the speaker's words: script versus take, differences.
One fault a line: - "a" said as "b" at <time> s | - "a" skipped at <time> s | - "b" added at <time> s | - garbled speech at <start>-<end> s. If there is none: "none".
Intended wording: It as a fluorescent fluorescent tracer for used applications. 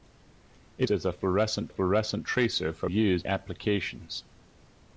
none